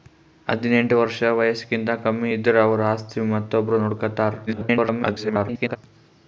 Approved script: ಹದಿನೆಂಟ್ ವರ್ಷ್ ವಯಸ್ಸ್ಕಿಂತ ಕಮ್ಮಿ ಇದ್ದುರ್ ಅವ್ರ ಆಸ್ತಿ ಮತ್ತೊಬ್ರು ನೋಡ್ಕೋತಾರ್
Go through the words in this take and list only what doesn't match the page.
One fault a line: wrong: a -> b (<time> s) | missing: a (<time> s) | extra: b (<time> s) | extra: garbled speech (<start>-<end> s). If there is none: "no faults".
extra: garbled speech (4.5-5.8 s)